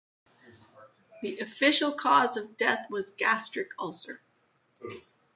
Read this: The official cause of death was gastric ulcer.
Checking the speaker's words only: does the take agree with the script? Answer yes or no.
yes